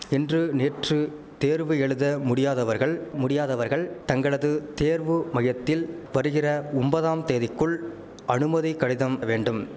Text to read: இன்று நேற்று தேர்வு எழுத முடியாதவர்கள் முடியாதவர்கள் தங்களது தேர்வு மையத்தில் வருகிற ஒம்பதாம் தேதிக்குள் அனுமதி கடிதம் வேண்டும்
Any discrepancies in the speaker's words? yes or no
no